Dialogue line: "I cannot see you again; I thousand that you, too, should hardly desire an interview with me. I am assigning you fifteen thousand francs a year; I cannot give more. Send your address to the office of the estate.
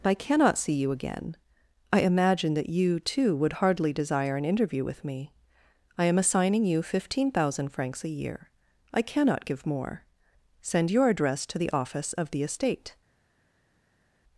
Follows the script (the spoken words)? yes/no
no